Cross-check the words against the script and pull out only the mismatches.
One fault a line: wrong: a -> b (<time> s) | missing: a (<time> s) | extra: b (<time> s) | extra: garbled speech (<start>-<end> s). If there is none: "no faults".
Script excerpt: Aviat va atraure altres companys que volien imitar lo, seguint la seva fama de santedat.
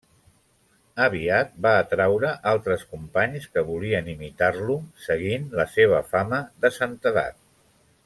no faults